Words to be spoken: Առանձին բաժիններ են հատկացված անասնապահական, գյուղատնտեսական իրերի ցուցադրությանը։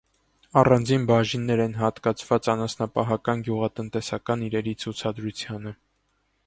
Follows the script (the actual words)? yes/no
yes